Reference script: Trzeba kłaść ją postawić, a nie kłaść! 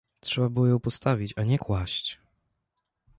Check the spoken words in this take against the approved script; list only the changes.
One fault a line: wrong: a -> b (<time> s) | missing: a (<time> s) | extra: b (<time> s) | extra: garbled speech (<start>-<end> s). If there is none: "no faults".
wrong: kłaść -> było (0.5 s)